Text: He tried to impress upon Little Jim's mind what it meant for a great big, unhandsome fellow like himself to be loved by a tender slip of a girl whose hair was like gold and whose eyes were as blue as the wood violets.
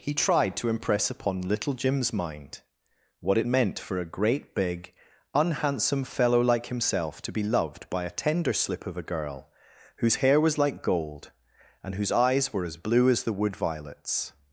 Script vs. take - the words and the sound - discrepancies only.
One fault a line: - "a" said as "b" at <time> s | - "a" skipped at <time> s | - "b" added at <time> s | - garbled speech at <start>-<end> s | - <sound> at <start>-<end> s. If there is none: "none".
none